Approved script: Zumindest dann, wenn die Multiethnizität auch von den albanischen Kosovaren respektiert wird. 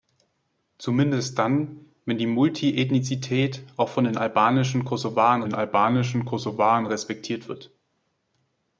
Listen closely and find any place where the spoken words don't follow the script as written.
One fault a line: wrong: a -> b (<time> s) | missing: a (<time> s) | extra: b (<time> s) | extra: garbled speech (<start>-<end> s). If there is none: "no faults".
extra: den albanischen Kosovaren (5.4 s)